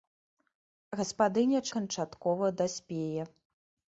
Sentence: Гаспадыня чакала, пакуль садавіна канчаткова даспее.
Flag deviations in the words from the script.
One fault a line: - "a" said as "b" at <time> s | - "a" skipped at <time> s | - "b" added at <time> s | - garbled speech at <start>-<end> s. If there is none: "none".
- "чакала пакуль садавіна" skipped at 1.6 s